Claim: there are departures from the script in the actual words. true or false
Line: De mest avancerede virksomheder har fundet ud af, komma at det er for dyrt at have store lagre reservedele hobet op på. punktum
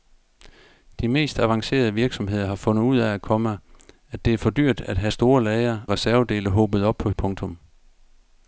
false